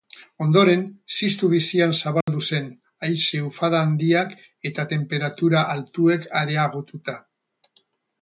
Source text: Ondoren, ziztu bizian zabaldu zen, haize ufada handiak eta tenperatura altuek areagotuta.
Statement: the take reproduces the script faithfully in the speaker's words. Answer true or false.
true